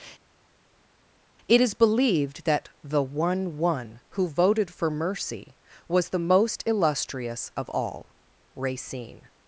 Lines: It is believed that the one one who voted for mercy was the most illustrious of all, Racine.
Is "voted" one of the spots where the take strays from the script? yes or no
no